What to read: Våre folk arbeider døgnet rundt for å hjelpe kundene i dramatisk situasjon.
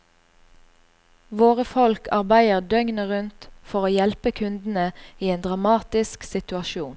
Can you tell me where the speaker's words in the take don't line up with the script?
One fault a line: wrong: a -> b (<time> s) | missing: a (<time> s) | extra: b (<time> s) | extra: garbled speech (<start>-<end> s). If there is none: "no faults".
extra: en (5.3 s)